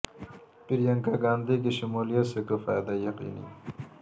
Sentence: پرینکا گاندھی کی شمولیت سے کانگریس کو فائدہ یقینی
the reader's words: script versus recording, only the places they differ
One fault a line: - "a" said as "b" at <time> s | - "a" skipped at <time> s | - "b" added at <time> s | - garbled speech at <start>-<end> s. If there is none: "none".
- "کانگریس" skipped at 2.4 s